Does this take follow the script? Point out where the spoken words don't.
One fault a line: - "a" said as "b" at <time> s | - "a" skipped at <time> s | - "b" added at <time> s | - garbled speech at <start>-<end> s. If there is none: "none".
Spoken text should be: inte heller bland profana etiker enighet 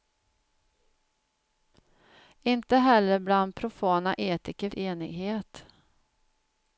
none